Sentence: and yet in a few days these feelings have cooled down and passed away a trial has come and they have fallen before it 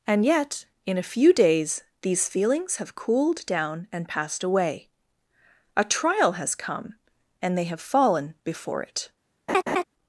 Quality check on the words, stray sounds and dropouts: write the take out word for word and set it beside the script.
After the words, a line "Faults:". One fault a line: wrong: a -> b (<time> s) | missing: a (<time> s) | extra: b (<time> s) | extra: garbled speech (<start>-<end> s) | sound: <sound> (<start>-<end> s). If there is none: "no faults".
and yet in a few days these feelings have cooled down and passed away a trial has come and they have fallen before it
Faults:
sound: laugh (9.5-9.8 s)